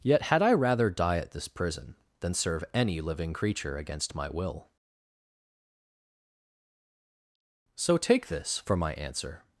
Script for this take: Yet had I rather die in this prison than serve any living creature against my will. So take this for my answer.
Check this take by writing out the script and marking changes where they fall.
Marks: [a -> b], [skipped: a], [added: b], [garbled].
Yet had I rather die [in -> at] this prison than serve any living creature against my will. So take this for my answer.